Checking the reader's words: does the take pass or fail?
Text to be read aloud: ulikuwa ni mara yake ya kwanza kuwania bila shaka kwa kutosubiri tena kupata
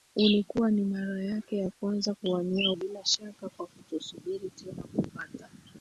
pass